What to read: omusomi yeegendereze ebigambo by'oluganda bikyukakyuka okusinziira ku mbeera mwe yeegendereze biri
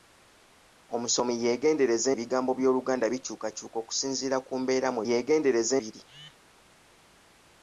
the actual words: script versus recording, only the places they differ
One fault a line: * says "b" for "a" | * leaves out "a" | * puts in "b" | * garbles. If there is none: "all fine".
all fine